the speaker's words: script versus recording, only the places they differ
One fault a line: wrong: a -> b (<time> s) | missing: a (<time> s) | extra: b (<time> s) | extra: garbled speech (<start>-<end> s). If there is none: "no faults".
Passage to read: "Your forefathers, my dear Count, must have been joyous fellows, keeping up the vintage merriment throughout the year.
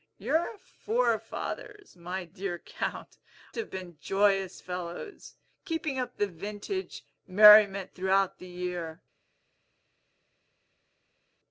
missing: must (3.2 s)